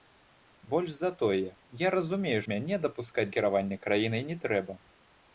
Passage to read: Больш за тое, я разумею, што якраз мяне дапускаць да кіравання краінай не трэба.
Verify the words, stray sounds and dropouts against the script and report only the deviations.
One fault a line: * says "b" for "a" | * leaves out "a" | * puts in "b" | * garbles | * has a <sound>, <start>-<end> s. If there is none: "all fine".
* leaves out "што якраз"
* leaves out "да"